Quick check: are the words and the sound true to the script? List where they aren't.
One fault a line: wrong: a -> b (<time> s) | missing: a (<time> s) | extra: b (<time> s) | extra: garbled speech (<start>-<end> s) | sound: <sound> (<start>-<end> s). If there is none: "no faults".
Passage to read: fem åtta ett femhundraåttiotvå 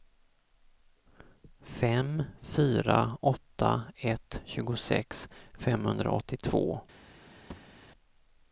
extra: fyra (2.4 s)
extra: tjugosex (4.5 s)
sound: thud (7.5-7.8 s)